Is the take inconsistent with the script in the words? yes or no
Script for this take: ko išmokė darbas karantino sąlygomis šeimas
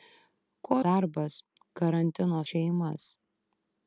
yes